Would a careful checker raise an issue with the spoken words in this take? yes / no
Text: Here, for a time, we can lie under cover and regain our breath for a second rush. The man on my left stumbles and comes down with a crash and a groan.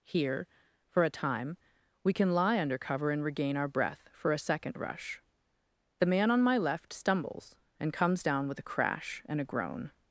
no